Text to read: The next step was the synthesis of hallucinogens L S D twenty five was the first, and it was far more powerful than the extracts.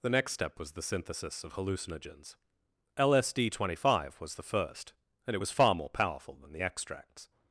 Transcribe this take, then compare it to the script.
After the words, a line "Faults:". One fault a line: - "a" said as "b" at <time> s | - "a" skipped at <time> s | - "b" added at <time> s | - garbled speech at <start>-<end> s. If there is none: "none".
The next step was the synthesis of hallucinogens L S D twenty five was the first, and it was far more powerful than the extracts.
Faults:
none